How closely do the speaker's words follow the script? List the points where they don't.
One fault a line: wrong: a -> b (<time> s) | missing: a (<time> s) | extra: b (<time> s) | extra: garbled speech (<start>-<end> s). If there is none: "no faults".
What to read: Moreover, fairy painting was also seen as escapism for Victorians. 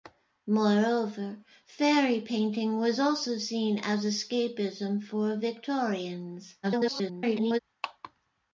extra: garbled speech (6.6-7.6 s)